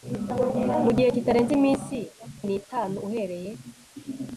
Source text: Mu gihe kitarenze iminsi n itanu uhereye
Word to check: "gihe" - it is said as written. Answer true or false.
true